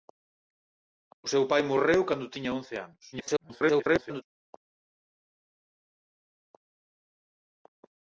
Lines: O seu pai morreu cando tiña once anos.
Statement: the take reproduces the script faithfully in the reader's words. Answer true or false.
false